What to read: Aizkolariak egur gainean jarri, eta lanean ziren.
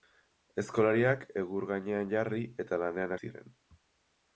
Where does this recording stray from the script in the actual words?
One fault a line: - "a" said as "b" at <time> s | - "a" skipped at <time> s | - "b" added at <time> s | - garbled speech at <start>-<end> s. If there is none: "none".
none